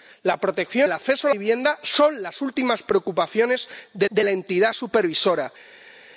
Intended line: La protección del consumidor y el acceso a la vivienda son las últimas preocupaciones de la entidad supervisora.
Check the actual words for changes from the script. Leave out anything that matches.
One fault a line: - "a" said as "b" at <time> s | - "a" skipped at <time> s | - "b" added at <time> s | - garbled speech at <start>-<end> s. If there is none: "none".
- "del consumidor y" skipped at 0.9 s
- "la" skipped at 1.3 s
- "de" added at 4.1 s